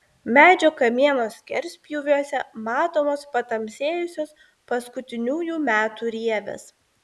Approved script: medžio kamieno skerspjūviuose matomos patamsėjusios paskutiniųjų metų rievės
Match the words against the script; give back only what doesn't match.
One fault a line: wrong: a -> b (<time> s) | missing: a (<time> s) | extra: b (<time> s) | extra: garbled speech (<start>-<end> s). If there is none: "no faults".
no faults